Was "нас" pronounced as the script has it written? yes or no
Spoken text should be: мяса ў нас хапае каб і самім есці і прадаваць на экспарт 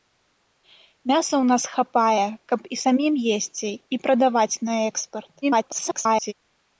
yes